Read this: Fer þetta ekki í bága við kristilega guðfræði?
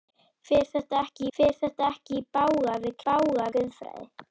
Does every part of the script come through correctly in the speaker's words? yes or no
no